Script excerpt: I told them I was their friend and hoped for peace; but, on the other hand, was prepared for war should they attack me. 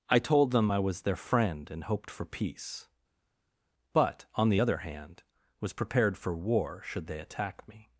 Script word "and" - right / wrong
right